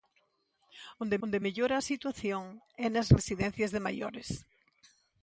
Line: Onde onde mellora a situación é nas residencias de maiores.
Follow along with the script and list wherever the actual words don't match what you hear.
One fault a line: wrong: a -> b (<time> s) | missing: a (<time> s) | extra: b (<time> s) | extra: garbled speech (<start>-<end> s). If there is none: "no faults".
no faults